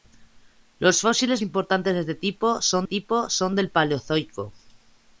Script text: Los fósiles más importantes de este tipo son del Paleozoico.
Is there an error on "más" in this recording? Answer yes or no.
yes